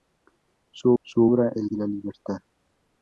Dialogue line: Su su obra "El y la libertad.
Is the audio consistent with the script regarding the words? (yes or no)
yes